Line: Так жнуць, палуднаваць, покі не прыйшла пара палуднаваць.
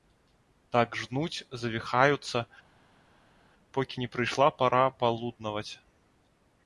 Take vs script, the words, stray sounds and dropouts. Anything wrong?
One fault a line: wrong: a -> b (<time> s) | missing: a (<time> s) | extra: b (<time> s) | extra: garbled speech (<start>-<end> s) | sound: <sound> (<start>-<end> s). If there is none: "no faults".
wrong: палуднаваць -> завіхаюцца (1.6 s)